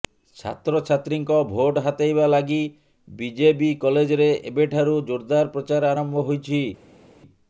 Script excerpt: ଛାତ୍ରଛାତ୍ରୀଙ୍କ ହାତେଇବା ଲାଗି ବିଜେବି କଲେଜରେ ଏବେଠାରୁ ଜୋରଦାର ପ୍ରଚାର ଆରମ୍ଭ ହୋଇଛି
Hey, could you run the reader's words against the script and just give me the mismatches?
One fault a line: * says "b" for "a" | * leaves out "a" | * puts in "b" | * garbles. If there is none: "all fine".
* puts in "ଭୋଟ"